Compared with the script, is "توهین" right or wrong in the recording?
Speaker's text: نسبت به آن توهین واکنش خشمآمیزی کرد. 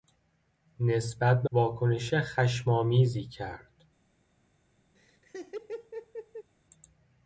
wrong